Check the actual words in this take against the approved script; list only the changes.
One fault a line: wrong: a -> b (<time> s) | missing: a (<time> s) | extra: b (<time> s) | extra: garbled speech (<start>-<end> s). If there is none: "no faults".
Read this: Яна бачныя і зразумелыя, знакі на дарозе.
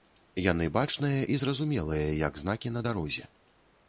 wrong: Яна -> Яны (0.5 s)
extra: як (2.3 s)